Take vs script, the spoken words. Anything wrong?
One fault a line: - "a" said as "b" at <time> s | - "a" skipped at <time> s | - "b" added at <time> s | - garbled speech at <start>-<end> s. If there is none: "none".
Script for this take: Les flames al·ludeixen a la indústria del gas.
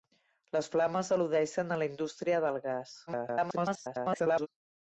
- garbled speech at 3.1-4.5 s